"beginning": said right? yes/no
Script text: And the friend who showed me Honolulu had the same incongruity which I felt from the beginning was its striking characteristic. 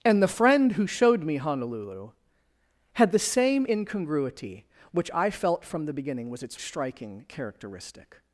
yes